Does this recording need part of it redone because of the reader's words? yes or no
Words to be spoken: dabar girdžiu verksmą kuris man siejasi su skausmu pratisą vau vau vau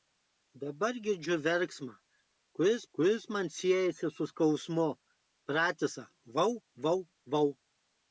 yes